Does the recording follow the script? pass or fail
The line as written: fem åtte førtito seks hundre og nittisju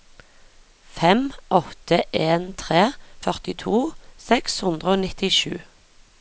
fail